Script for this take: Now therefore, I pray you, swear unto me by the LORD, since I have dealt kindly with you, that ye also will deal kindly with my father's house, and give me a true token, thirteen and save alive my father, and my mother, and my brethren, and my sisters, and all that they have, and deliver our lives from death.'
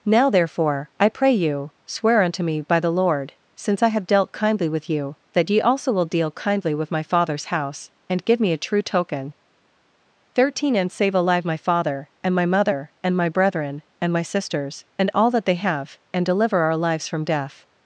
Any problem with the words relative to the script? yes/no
no